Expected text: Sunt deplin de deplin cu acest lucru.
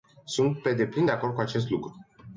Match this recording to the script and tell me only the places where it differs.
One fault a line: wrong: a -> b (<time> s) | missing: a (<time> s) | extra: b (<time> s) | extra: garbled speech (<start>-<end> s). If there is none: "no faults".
extra: pe (0.6 s)
wrong: deplin -> acord (1.1 s)